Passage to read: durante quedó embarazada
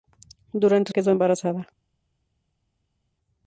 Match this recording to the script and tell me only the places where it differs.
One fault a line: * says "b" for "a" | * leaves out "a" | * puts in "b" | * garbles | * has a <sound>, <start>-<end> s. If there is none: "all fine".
all fine